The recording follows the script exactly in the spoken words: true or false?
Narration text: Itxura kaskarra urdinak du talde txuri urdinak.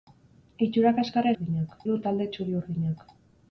true